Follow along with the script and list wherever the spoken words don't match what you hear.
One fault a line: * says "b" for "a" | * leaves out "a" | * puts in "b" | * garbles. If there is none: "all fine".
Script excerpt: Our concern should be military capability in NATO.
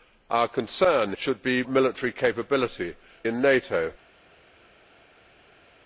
all fine